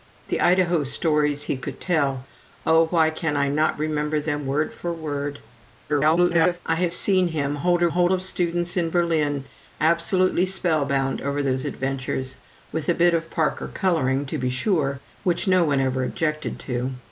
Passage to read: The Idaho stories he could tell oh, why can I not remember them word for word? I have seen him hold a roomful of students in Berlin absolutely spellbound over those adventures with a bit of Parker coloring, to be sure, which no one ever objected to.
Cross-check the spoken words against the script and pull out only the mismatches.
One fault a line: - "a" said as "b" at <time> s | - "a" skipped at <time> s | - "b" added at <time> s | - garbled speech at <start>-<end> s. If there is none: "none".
- garbled speech at 5.9-6.6 s
- "roomful" said as "hold" at 7.9 s